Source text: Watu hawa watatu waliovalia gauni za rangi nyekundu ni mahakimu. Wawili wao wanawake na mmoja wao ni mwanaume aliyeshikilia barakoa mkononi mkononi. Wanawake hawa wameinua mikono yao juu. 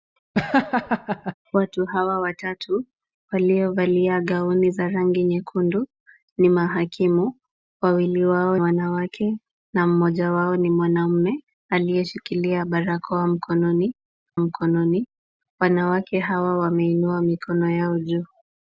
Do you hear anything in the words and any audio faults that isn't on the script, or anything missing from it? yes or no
yes